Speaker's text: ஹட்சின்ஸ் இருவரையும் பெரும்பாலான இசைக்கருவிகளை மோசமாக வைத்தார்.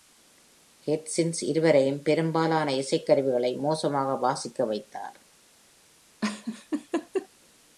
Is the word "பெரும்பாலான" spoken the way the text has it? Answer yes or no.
yes